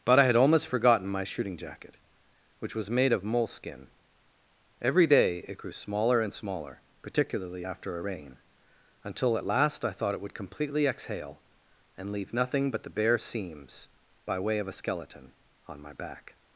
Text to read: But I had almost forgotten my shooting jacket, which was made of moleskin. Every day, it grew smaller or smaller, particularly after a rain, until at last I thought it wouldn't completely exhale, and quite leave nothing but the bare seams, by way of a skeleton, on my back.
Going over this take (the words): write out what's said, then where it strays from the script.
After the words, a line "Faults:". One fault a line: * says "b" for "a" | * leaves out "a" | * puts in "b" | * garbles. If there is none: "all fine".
But I had almost forgotten my shooting jacket, which was made of moleskin. Every day, it grew smaller and smaller, particularly after a rain, until at last I thought it would completely exhale, and leave nothing but the bare seams, by way of a skeleton, on my back.
Faults:
* says "and" for "or"
* says "would" for "wouldn't"
* leaves out "quite"